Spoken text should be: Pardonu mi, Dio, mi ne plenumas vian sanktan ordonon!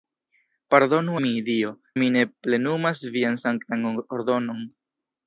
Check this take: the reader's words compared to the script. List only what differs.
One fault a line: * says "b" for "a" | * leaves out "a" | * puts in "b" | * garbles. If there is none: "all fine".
all fine